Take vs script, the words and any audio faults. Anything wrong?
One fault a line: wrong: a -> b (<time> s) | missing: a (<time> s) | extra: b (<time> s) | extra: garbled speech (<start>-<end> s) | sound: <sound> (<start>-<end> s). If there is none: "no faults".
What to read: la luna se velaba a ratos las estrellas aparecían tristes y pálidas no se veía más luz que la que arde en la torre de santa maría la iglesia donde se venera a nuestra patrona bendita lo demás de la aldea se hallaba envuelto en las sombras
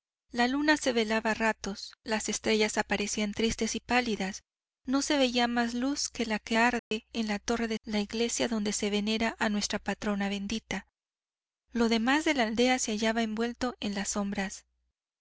sound: dropout (6.8-6.9 s)
missing: santa maría (7.8 s)